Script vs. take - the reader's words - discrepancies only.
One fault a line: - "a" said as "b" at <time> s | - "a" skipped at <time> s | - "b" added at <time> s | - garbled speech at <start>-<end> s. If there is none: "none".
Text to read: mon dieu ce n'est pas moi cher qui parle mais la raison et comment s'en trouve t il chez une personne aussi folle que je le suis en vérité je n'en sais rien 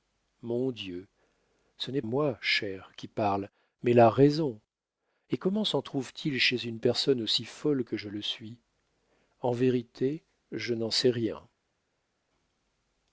- "pas" skipped at 2.0 s